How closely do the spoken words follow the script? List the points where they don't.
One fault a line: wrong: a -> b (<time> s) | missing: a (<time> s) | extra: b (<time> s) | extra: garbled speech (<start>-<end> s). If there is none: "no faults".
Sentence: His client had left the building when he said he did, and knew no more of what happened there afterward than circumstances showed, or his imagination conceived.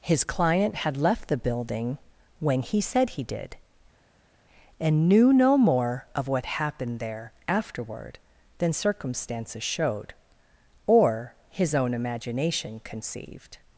extra: own (11.7 s)